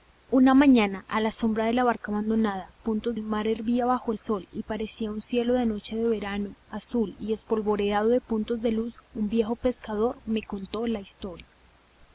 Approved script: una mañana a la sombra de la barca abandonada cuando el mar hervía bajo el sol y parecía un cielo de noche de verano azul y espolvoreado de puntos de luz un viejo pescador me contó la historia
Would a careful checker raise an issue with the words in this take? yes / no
yes